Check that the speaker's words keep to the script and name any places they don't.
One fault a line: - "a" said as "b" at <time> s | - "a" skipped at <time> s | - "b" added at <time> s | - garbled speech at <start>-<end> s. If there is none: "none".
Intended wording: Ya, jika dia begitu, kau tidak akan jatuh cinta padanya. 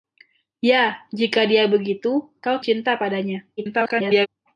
- "tidak akan jatuh" skipped at 2.6 s
- garbled speech at 3.6-4.3 s